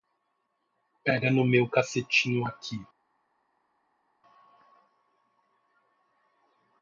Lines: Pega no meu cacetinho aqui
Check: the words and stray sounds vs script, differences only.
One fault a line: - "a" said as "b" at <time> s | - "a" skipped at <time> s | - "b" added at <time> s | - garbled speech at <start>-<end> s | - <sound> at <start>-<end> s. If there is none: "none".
none